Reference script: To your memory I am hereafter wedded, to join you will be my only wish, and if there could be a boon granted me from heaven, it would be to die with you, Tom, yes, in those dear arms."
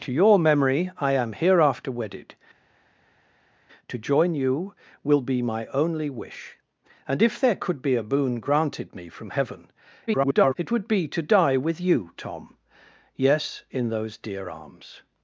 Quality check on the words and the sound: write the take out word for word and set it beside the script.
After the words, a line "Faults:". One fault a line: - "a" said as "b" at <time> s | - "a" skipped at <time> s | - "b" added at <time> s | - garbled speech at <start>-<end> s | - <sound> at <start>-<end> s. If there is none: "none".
To your memory I am hereafter wedded, to join you will be my only wish, and if there could be a boon granted me from heaven, [garbled] it would be to die with you, Tom, yes, in those dear arms."
Faults:
- garbled speech at 10.1-10.5 s